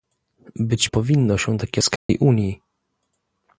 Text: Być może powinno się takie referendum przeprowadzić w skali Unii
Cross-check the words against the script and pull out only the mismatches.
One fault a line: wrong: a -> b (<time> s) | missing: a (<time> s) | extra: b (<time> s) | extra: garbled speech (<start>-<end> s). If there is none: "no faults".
missing: może (0.9 s)
missing: referendum przeprowadzić (1.8 s)